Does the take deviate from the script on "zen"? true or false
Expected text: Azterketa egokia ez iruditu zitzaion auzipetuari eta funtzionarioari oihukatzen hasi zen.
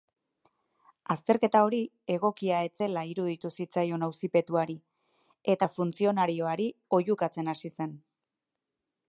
false